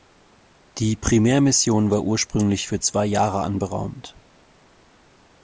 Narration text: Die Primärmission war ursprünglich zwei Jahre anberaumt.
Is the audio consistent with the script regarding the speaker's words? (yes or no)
no